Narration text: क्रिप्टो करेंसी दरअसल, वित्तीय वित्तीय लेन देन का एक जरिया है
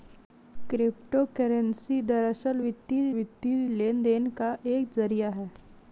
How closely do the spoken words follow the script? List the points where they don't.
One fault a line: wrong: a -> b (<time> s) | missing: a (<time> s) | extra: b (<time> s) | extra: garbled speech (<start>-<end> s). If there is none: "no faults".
no faults